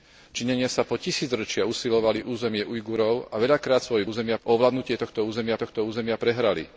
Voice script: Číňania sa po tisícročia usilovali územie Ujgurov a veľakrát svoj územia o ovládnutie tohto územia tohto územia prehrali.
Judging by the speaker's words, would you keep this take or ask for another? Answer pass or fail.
pass